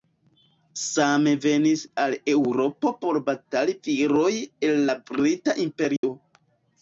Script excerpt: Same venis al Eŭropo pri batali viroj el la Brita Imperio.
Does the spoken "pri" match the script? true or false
false